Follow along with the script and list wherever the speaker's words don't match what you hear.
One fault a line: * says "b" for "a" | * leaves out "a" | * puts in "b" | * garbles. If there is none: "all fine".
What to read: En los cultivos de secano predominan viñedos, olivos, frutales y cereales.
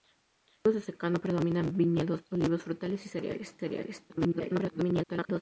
* garbles